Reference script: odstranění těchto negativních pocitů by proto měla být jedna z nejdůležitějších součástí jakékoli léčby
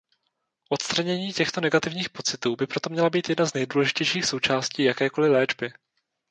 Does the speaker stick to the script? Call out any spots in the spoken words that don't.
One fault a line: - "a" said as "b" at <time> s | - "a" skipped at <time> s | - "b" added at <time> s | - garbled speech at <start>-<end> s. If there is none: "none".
none